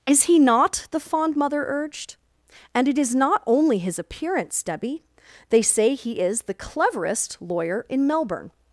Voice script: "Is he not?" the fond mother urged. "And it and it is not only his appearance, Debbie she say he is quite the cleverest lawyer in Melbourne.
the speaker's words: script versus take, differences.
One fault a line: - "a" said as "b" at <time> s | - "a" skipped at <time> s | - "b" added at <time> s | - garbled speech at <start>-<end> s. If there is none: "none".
- "and it" skipped at 3.0 s
- "she" said as "they" at 5.5 s
- "quite" skipped at 6.4 s